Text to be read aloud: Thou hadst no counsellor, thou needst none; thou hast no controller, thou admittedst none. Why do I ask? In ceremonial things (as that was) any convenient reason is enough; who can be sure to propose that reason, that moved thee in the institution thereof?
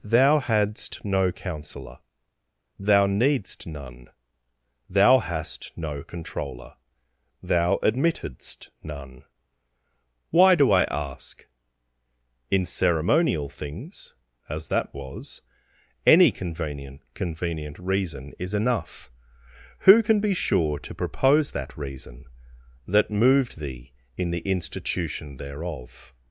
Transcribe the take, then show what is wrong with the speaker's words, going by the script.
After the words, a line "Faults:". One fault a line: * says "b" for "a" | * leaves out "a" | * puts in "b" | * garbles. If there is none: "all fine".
Thou hadst no counsellor, thou needst none; thou hast no controller, thou admittedst none. Why do I ask? In ceremonial things (as that was) any convenient convenient reason is enough; who can be sure to propose that reason, that moved thee in the institution thereof?
Faults:
* puts in "convenient"